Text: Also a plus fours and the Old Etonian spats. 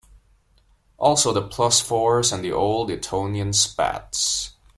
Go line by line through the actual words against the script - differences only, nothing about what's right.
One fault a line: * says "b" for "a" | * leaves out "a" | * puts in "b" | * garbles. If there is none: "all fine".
* says "the" for "a"